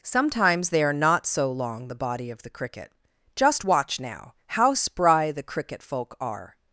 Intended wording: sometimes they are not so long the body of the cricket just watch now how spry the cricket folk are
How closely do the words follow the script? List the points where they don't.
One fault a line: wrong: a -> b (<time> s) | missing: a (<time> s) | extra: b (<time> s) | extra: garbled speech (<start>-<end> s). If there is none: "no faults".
no faults